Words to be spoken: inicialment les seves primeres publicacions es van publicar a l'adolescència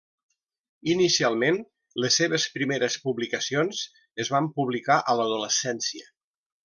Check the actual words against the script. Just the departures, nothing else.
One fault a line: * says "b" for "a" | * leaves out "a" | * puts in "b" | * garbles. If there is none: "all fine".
all fine